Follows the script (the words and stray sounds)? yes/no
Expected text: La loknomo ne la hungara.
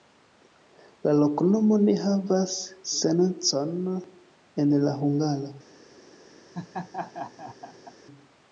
no